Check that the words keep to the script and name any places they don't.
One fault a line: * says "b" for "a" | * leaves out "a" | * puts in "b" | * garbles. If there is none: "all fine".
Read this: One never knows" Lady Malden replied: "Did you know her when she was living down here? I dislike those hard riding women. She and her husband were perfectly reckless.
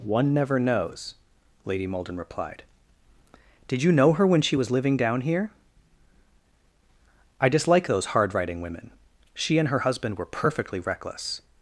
all fine